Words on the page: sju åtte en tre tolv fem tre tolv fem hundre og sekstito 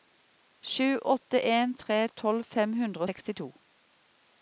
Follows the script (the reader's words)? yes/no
no